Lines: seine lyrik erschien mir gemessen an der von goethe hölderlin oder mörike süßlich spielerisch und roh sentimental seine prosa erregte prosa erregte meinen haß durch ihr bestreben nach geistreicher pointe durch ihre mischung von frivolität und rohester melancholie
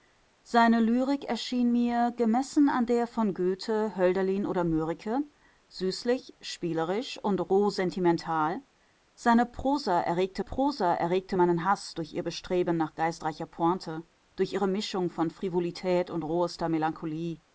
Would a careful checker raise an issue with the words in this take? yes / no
no